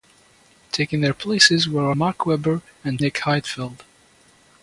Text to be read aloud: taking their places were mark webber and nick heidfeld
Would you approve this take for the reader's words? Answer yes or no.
yes